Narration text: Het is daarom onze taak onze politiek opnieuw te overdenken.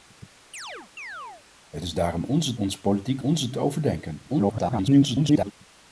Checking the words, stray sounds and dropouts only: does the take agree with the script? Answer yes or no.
no